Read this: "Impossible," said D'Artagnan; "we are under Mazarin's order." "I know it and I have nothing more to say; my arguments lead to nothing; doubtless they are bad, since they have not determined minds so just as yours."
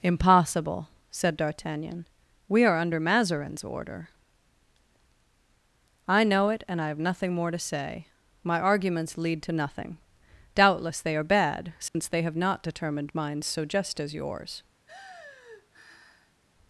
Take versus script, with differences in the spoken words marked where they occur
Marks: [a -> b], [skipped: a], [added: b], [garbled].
"Impossible," said D'Artagnan; "we are under Mazarin's order." "I know it and I have nothing more to say; my arguments lead to nothing; doubtless they are bad, since they have not determined minds so just as yours."